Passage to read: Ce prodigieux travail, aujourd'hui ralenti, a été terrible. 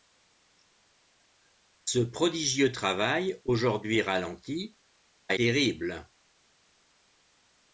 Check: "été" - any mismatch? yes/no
yes